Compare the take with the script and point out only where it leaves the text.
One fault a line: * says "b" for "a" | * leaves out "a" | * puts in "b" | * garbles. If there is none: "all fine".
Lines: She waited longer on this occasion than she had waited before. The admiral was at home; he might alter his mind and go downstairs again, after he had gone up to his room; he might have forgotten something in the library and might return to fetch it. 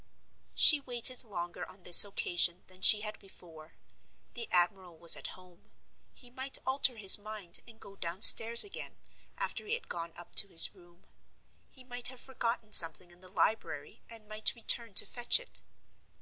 * leaves out "waited"